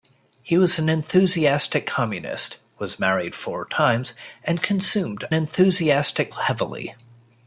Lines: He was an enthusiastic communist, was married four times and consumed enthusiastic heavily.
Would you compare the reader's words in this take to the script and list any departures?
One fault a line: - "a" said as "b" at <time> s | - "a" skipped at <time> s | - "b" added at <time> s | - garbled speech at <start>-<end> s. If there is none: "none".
none